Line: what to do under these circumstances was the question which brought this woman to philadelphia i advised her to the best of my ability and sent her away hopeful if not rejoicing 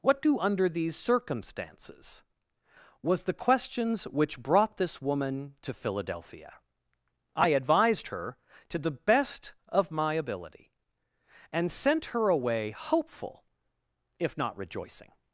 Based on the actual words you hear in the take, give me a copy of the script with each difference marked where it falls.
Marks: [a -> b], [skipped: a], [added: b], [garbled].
what [skipped: to] do under these circumstances was the [question -> questions] which brought this woman to philadelphia i advised her to the best of my ability and sent her away hopeful if not rejoicing